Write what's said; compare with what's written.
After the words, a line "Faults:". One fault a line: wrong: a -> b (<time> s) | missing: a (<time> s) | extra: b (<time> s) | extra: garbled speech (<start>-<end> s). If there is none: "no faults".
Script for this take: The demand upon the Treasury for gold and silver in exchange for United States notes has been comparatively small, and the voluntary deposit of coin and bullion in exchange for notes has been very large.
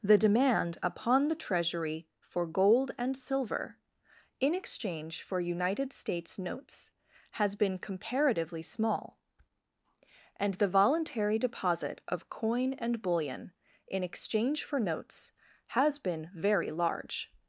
The demand upon the Treasury for gold and silver in exchange for United States notes has been comparatively small, and the voluntary deposit of coin and bullion in exchange for notes has been very large.
Faults:
no faults